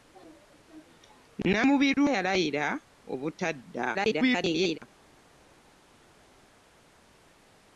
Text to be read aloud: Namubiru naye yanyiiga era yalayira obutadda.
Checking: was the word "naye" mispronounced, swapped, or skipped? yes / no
yes